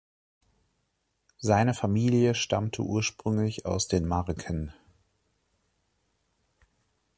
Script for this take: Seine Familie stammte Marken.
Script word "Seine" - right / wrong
right